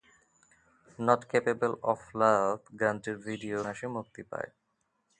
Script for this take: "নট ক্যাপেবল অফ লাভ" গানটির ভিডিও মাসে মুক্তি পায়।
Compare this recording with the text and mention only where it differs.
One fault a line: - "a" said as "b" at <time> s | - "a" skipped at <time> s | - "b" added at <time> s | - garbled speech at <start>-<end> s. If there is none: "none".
none